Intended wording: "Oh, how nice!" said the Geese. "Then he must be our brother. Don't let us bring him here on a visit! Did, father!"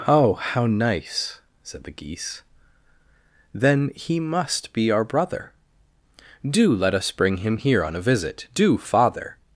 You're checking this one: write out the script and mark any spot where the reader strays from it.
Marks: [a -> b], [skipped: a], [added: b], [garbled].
"Oh, how nice!" said the Geese. "Then he must be our brother. [Don't -> Do] let us bring him here on a visit! [Did, -> Do] father!"